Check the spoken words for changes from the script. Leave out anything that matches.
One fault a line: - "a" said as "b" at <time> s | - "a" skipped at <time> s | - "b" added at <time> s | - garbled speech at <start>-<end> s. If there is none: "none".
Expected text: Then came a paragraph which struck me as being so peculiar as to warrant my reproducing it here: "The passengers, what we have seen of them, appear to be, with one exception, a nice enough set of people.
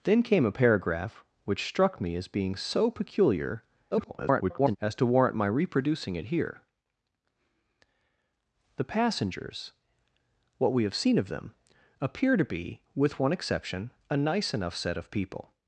- garbled speech at 3.9-4.8 s